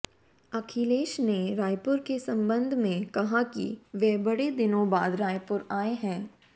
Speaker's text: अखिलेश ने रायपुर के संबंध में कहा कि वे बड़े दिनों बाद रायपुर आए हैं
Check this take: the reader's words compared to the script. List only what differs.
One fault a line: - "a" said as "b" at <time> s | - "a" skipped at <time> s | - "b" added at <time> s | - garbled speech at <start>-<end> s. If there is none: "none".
none